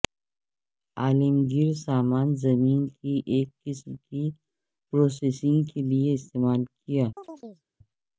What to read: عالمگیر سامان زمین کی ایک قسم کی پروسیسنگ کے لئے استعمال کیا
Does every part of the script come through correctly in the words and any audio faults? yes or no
no